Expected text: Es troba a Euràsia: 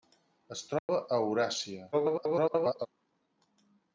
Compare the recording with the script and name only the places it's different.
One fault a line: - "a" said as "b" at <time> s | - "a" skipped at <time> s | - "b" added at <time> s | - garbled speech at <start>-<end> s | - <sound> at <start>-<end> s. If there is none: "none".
- dropout at 0.8-0.9 s
- garbled speech at 1.9-2.9 s